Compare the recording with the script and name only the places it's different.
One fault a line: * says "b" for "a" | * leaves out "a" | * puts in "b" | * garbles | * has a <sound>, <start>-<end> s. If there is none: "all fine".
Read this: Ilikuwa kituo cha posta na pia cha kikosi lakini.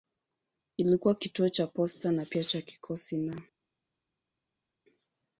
* says "na" for "lakini"